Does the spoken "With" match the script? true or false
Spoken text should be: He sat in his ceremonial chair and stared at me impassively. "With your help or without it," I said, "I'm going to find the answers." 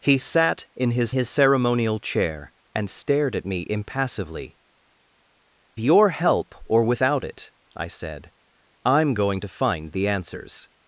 false